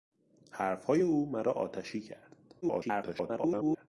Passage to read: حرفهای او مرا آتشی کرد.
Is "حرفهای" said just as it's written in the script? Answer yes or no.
yes